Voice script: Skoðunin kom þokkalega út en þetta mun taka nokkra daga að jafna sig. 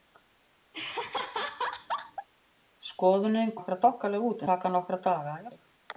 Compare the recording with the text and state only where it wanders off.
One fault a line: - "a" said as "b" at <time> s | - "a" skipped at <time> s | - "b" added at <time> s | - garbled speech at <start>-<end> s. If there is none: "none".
- "kom" said as "nokkra" at 3.6 s
- "en þetta mun" skipped at 4.5 s
- "jafna" skipped at 5.5 s